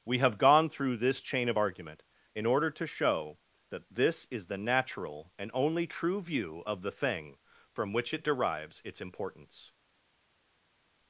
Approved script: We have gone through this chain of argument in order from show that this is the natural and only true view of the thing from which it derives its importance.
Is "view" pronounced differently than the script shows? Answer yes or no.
no